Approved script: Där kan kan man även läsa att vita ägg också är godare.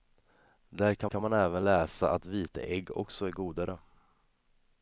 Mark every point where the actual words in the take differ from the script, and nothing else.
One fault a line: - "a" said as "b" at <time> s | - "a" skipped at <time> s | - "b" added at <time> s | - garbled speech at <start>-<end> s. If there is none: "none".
none